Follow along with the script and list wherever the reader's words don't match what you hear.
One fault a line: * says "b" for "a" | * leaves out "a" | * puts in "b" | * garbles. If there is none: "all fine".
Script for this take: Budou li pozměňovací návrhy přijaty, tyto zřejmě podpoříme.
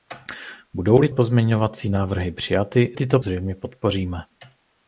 all fine